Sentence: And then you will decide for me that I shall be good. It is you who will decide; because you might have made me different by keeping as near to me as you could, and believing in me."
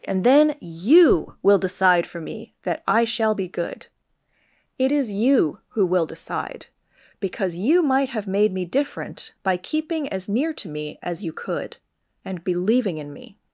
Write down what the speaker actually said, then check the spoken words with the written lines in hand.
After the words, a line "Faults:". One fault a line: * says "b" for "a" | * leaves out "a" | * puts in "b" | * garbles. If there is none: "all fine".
And then you will decide for me that I shall be good. It is you who will decide; because you might have made me different by keeping as near to me as you could, and believing in me."
Faults:
all fine